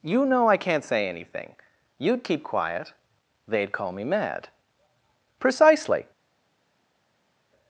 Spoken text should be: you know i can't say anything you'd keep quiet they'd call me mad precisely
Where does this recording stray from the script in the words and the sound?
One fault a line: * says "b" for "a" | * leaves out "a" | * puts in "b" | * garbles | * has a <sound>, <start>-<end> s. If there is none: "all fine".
all fine